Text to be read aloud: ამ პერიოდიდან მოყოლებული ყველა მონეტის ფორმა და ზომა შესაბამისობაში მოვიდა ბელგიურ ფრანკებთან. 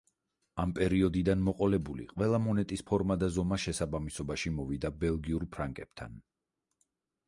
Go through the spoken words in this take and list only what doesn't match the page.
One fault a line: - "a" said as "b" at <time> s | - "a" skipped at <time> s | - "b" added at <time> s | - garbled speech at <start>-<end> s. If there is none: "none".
none